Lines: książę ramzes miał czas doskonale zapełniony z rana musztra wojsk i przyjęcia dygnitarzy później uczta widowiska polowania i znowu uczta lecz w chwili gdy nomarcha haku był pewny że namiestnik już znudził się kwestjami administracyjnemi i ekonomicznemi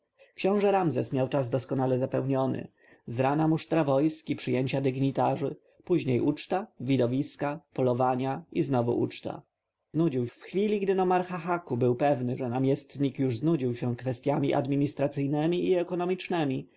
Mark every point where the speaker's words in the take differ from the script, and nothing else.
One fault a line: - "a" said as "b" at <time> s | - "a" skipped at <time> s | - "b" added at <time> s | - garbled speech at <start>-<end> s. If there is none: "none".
- "lecz" said as "znudził" at 9.9 s